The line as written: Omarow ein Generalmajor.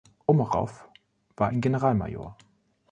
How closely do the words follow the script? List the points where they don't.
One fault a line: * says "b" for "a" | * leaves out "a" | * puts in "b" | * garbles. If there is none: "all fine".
* puts in "war"